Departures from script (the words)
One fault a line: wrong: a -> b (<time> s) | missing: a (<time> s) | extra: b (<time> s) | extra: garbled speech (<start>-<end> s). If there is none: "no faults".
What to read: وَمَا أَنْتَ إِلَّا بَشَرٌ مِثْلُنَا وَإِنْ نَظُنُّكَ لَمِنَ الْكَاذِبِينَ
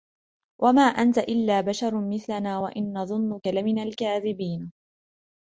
no faults